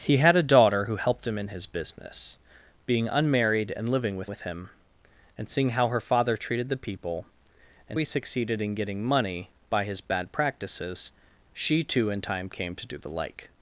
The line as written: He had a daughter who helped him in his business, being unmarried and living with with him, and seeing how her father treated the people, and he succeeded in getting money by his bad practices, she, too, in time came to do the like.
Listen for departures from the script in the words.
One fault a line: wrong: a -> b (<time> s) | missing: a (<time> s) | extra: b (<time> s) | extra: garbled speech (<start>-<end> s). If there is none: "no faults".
no faults